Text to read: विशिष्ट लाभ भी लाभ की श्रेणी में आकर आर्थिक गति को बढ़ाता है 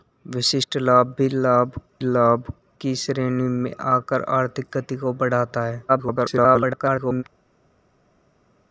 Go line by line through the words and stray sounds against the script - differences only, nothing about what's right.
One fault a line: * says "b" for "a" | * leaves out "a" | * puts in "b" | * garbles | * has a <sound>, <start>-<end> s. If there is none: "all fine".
* puts in "लाभ"
* garbles